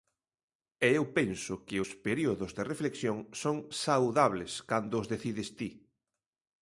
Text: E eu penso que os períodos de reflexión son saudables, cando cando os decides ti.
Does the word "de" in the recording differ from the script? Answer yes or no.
no